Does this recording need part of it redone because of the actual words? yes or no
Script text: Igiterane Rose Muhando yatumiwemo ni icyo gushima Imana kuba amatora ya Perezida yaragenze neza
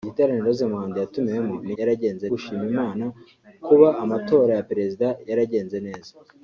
yes